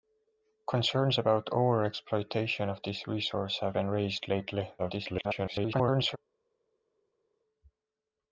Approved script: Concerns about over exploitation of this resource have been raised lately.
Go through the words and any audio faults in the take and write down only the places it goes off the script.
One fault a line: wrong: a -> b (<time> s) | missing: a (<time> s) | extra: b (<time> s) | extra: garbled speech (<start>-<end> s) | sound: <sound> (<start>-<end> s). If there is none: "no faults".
extra: garbled speech (4.8-6.2 s)